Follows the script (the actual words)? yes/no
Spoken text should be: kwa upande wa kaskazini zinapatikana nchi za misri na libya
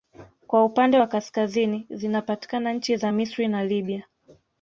yes